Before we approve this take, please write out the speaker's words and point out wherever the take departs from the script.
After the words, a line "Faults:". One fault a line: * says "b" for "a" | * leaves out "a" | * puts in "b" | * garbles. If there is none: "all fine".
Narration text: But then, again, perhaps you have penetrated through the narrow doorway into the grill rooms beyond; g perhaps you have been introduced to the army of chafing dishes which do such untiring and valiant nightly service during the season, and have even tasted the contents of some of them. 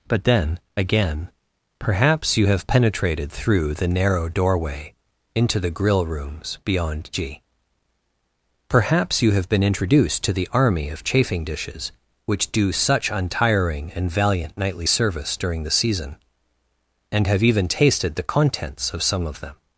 But then, again, perhaps you have penetrated through the narrow doorway into the grill rooms beyond; g perhaps you have been introduced to the army of chafing dishes which do such untiring and valiant nightly service during the season, and have even tasted the contents of some of them.
Faults:
all fine